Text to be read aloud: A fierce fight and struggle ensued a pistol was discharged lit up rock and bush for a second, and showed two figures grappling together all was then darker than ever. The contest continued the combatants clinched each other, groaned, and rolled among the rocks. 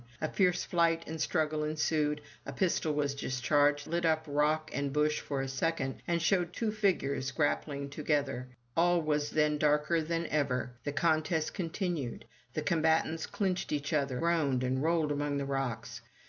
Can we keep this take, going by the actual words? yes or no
yes